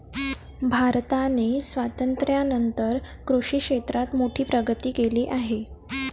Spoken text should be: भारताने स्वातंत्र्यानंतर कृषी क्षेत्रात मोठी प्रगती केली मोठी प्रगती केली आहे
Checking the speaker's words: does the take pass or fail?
fail